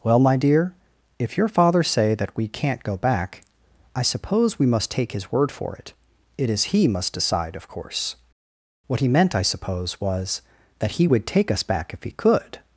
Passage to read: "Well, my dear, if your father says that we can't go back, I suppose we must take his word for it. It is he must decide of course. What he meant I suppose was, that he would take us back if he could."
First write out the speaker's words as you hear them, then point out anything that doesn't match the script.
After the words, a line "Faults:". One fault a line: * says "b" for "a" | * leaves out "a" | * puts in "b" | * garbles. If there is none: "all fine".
"Well, my dear, if your father say that we can't go back, I suppose we must take his word for it. It is he must decide of course. What he meant I suppose was, that he would take us back if he could."
Faults:
* says "say" for "says"